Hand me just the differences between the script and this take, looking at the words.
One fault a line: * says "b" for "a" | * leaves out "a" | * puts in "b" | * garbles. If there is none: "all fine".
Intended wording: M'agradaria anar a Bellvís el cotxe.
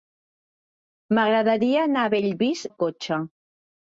all fine